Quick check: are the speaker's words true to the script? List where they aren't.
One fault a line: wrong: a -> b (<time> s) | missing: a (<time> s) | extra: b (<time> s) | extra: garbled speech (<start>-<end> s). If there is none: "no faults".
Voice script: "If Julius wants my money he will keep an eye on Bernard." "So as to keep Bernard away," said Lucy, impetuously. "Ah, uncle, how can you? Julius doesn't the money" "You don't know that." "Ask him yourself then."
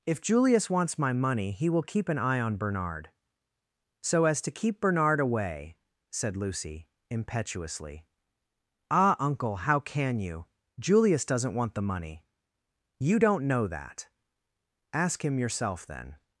extra: want (11.5 s)